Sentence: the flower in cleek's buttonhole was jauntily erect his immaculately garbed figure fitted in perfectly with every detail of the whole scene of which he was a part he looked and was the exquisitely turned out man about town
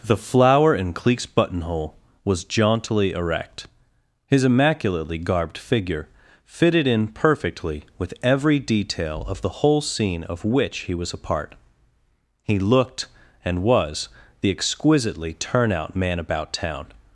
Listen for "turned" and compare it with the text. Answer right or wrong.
wrong